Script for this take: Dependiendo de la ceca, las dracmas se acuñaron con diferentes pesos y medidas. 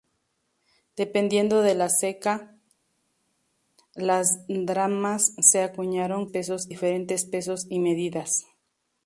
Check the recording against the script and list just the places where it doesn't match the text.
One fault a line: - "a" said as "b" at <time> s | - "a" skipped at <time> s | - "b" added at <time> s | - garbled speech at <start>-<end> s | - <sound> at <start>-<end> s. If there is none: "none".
- "con" said as "pesos" at 6.3 s